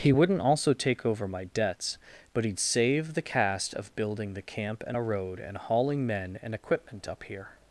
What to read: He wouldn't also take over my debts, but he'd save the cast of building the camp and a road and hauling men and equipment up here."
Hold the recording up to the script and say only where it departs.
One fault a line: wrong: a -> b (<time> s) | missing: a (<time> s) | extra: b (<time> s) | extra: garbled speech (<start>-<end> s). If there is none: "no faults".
no faults